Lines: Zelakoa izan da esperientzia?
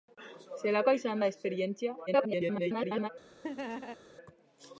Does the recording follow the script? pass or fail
fail